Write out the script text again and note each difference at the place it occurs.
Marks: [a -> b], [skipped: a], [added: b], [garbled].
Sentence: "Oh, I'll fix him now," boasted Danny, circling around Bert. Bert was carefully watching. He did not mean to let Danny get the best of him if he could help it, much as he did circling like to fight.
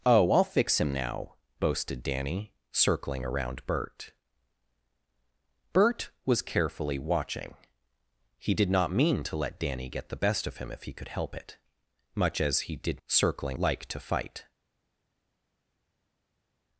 "Oh, I'll fix him now," boasted Danny, circling around Bert. Bert was carefully watching. He did not mean to let Danny get the best of him if he could help it, much as he did circling like to fight.